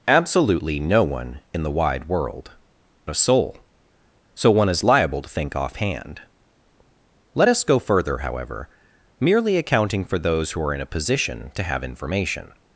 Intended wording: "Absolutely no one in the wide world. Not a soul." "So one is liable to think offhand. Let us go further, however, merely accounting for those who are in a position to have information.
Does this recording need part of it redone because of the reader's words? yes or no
yes